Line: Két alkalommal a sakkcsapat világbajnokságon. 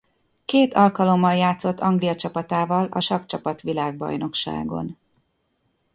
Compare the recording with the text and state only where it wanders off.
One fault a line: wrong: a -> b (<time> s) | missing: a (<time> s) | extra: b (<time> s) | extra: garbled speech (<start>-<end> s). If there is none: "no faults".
extra: játszott Anglia csapatával (1.4 s)